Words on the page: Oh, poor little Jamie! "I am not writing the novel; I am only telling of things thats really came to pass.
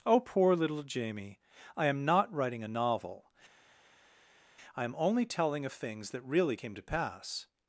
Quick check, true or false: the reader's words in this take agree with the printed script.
false